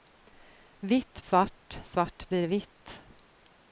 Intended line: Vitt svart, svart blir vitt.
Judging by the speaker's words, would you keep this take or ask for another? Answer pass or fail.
pass